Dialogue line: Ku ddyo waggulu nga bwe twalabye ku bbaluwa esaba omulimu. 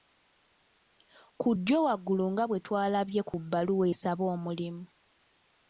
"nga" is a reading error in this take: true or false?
false